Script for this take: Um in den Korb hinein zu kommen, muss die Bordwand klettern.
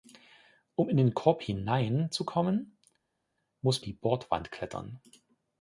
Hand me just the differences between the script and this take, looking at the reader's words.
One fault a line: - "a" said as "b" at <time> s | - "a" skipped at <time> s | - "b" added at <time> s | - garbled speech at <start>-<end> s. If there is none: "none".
none